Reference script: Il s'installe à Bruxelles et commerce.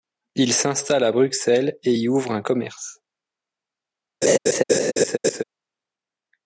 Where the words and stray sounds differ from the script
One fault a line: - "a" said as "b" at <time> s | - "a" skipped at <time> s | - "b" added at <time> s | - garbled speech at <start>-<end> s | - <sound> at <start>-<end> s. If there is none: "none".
- "y ouvre un" added at 1.9 s
- laugh at 4.2-5.4 s